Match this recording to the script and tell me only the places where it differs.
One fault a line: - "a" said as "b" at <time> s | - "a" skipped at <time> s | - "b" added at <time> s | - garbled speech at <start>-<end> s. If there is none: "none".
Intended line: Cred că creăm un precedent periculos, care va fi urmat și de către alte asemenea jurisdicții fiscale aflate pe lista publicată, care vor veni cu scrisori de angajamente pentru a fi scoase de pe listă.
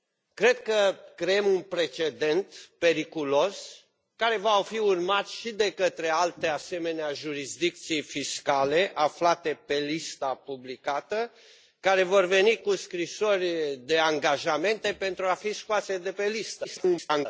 - garbled speech at 16.6-17.3 s